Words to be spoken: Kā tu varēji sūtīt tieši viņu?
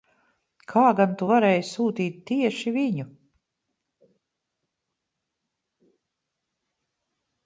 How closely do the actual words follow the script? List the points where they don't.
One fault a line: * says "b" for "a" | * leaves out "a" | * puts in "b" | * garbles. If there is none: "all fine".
* puts in "gan"